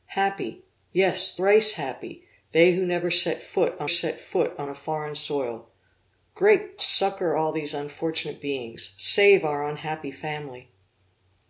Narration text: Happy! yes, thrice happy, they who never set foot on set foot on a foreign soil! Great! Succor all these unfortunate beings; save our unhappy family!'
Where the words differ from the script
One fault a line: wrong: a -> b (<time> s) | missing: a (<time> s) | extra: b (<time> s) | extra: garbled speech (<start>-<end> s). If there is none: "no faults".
no faults